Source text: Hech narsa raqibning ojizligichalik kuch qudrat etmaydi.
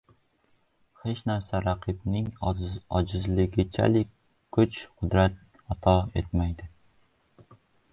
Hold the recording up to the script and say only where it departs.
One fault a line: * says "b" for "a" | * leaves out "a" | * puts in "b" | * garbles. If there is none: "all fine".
* puts in "ato"